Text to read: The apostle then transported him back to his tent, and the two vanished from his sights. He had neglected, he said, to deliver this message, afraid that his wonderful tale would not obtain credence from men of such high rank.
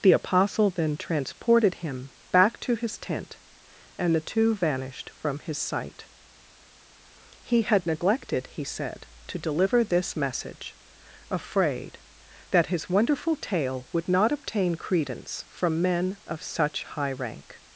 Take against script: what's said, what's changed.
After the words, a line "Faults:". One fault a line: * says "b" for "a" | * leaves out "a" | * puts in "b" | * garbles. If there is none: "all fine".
The apostle then transported him back to his tent, and the two vanished from his sight. He had neglected, he said, to deliver this message, afraid that his wonderful tale would not obtain credence from men of such high rank.
Faults:
* says "sight" for "sights"